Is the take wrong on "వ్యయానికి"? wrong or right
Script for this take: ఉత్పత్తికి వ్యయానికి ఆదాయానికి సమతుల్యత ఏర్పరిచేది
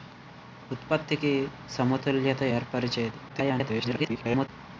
wrong